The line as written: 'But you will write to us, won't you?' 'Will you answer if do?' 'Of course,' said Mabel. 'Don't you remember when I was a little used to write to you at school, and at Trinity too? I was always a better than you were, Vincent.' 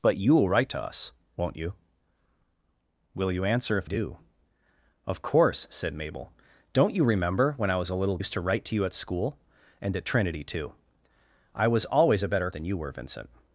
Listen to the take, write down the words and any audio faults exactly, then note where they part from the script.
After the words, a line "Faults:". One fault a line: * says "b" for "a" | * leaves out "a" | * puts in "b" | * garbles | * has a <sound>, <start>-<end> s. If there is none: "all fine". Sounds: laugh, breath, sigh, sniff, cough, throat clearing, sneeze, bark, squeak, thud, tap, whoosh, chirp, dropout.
'But you will write to us, won't you?' 'Will you answer if do?' 'Of course,' said Mabel. 'Don't you remember when I was a little used to write to you at school, and at Trinity too? I was always a better than you were, Vincent.'
Faults:
all fine